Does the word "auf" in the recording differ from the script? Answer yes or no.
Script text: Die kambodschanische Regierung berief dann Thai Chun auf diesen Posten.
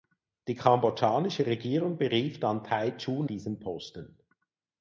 yes